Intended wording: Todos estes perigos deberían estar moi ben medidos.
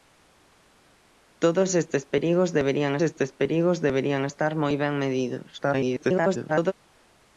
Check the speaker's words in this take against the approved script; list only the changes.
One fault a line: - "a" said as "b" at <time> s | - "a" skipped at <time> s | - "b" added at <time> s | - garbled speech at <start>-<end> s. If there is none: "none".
- "estes perigos deberían" added at 3.1 s
- garbled speech at 5.6-6.7 s